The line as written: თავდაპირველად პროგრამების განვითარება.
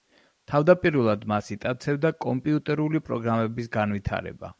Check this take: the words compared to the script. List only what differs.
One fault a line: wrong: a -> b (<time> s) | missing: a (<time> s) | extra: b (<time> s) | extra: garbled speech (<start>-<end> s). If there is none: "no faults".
extra: მას იტაცებდა კომპიუტერული (1.3 s)